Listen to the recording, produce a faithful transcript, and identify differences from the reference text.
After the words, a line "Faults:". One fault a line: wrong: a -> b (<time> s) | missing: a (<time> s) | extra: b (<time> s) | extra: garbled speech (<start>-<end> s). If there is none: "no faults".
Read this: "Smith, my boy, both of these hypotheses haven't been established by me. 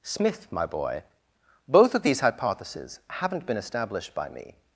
"Smith, my boy, both of these hypotheses haven't been established by me.
Faults:
no faults